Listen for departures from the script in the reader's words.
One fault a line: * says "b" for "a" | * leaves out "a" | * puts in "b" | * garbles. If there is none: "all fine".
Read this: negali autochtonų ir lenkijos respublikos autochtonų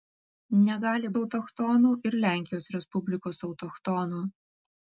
all fine